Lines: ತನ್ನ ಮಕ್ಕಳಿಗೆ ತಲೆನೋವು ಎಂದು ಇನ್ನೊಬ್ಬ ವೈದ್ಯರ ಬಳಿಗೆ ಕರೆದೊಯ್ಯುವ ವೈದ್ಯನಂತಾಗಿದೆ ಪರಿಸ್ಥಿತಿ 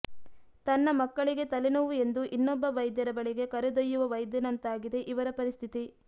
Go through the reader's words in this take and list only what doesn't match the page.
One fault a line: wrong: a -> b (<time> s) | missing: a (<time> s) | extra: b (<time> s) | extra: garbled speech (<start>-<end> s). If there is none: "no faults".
extra: ಇವರ (5.1 s)